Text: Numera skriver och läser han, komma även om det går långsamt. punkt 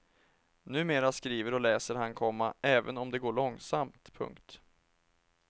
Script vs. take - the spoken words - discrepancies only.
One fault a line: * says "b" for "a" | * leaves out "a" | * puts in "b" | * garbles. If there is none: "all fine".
all fine